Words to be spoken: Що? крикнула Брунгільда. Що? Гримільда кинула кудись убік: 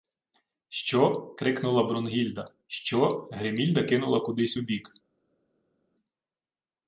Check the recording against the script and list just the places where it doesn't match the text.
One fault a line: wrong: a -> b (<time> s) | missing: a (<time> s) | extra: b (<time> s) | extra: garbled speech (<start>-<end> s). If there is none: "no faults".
no faults